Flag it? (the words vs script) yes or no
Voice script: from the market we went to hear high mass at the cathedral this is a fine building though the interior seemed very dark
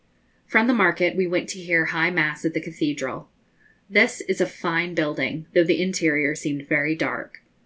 no